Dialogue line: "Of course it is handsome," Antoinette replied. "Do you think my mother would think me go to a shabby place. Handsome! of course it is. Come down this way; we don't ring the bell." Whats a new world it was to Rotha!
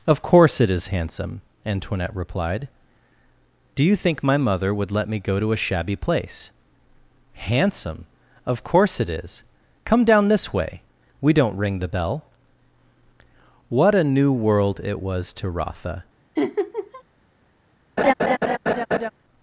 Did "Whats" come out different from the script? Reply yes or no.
yes